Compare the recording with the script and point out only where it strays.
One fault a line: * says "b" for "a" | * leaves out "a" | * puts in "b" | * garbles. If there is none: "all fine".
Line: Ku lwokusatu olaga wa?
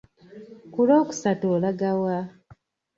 all fine